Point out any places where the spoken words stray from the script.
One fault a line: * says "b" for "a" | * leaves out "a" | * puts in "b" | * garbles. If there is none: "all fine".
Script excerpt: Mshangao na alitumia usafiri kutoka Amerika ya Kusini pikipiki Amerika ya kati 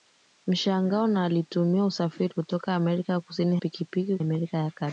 all fine